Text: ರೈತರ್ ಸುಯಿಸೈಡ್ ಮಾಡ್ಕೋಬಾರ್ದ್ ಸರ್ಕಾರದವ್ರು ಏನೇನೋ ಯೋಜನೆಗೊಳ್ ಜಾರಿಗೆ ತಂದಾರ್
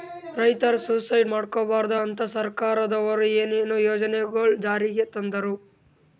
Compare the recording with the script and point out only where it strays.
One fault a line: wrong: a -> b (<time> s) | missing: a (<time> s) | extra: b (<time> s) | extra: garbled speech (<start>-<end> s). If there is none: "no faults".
extra: ಅಂತಾ (2.0 s)